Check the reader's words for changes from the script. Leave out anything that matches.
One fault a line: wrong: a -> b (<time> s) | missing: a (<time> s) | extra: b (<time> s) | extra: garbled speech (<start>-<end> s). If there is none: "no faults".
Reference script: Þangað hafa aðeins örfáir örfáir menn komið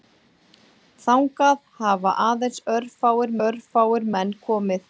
no faults